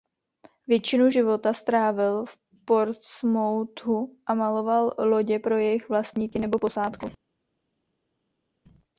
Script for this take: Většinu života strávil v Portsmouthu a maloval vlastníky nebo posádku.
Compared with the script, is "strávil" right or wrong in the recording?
right